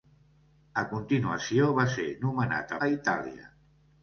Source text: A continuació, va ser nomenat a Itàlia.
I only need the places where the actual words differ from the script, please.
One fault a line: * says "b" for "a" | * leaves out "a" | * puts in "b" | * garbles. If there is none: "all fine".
all fine